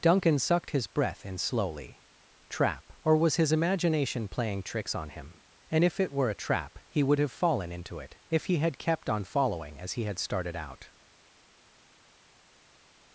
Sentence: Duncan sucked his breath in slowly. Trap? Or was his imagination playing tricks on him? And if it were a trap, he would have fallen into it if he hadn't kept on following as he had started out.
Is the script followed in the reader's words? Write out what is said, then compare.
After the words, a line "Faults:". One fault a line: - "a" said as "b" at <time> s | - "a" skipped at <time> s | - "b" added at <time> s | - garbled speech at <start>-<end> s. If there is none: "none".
Duncan sucked his breath in slowly. Trap? Or was his imagination playing tricks on him? And if it were a trap, he would have fallen into it if he had kept on following as he had started out.
Faults:
- "hadn't" said as "had" at 8.6 s